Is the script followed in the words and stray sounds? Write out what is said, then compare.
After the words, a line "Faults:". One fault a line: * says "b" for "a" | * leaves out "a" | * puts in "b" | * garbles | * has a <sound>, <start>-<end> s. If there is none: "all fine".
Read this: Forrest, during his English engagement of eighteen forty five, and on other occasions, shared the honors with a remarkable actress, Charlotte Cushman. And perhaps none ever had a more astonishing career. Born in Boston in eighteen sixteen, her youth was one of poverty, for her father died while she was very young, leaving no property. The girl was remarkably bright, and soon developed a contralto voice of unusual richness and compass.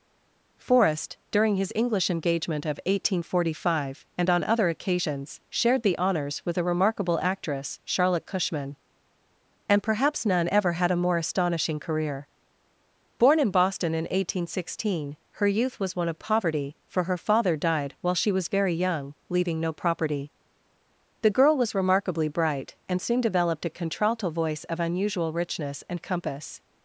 Forrest, during his English engagement of eighteen forty five, and on other occasions, shared the honors with a remarkable actress, Charlotte Cushman. And perhaps none ever had a more astonishing career. Born in Boston in eighteen sixteen, her youth was one of poverty, for her father died while she was very young, leaving no property. The girl was remarkably bright, and soon developed a contralto voice of unusual richness and compass.
Faults:
all fine